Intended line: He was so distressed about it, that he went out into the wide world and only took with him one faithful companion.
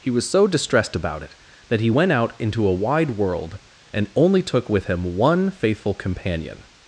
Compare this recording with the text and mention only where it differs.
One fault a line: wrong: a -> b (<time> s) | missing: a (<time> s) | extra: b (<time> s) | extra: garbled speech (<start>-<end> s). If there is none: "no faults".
wrong: the -> a (2.6 s)